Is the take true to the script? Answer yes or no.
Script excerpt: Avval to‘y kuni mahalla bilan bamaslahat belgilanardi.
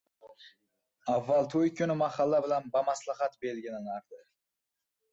yes